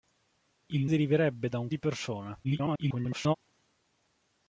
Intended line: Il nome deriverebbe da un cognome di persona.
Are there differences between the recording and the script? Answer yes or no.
yes